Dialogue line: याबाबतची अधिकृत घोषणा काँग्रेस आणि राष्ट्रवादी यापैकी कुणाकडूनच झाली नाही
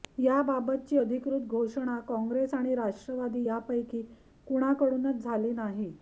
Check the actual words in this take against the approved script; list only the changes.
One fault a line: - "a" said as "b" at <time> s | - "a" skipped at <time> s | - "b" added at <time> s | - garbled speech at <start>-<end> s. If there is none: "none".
none